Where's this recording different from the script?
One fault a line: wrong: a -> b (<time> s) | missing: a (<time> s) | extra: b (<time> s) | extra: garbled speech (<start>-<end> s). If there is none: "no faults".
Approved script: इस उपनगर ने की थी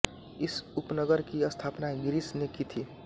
extra: की स्थापना गिरिश (1.2 s)